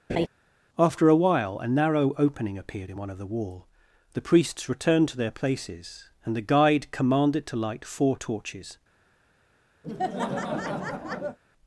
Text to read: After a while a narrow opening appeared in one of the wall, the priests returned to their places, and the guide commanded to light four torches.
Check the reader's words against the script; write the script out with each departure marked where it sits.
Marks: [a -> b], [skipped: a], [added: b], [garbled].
After a while a narrow opening appeared in one of the wall, the priests returned to their places, and the guide commanded to light four torches.